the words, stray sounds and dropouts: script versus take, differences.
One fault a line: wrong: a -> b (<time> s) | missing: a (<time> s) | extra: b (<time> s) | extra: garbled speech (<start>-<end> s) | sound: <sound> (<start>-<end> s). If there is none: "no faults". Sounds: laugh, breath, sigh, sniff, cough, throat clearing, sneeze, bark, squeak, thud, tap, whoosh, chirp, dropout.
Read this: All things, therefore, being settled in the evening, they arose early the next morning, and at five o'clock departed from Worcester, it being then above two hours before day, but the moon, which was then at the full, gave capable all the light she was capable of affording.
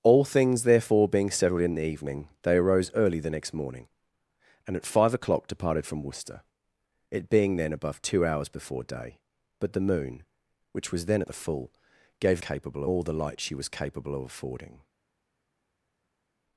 no faults